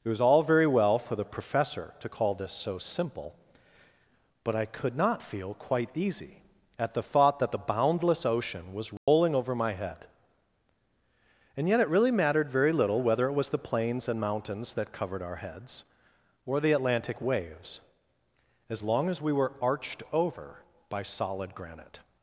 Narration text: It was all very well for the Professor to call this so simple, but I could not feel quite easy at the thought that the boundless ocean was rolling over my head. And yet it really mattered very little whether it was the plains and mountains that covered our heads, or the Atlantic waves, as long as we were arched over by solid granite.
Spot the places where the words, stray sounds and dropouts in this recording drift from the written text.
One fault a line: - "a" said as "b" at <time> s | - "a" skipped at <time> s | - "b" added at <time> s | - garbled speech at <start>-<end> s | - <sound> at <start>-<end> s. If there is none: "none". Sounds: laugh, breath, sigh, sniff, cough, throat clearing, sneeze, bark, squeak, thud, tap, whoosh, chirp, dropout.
- dropout at 9.0-9.1 s